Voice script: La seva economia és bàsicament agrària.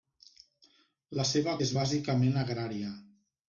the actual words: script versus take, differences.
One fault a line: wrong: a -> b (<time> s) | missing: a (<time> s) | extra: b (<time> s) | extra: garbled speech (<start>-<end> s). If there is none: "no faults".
missing: economia (1.5 s)